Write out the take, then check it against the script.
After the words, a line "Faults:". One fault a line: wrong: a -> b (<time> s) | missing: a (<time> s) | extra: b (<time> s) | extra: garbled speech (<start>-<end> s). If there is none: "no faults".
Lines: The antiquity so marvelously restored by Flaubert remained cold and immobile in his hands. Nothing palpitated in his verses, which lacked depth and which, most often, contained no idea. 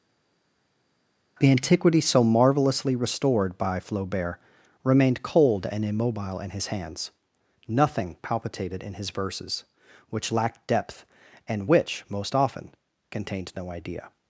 The antiquity so marvelously restored by Flaubert remained cold and immobile in his hands. Nothing palpitated in his verses, which lacked depth and which, most often, contained no idea.
Faults:
no faults